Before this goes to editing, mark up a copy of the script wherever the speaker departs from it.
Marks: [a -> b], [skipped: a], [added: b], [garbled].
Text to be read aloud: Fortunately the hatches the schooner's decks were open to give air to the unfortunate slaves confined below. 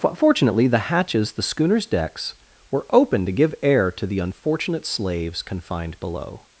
Fortunately the hatches the schooner's decks were open to give air to the unfortunate slaves confined below.